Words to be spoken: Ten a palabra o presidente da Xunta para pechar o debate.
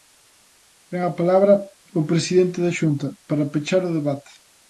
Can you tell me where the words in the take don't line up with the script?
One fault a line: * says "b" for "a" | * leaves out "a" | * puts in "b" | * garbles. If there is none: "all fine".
all fine